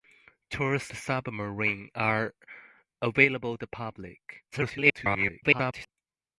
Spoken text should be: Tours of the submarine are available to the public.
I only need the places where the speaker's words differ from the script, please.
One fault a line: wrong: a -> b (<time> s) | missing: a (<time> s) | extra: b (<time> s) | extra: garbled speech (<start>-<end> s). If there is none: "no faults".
missing: of (0.9 s)
missing: to (3.6 s)
extra: garbled speech (4.5-5.9 s)